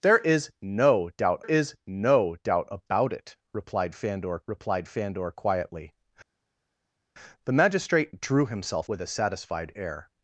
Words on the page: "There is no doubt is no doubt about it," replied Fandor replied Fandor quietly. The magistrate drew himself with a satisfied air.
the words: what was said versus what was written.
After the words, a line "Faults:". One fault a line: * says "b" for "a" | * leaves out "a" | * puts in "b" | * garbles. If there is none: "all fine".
"There is no doubt is no doubt about it," replied Fandor replied Fandor quietly. The magistrate drew himself with a satisfied air.
Faults:
all fine